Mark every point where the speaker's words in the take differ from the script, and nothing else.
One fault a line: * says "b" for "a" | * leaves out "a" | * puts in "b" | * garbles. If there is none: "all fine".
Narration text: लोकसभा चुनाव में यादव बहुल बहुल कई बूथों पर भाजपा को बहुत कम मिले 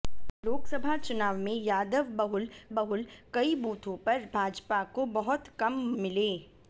all fine